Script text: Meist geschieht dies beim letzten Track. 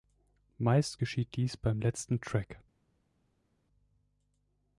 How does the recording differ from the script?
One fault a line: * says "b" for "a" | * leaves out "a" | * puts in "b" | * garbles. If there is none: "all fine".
all fine